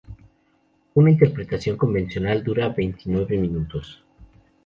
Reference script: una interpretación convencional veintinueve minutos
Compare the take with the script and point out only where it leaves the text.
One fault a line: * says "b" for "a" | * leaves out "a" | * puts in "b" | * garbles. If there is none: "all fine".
* puts in "dura"